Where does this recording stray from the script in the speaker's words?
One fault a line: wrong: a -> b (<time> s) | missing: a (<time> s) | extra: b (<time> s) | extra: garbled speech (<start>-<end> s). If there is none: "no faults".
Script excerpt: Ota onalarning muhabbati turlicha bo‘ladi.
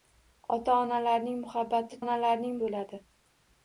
wrong: turlicha -> onalarning (2.0 s)